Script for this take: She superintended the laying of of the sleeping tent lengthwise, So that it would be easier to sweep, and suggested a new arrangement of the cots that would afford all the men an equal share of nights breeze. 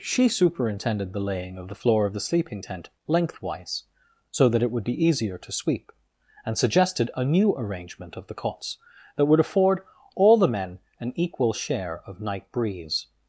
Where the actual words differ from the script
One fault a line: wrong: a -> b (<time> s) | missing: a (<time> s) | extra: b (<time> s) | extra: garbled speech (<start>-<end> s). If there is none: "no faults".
extra: the floor (1.7 s)
wrong: nights -> night (12.2 s)